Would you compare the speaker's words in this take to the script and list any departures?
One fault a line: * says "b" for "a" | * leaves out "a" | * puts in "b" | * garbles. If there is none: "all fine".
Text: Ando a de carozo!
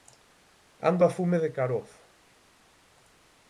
* puts in "fume"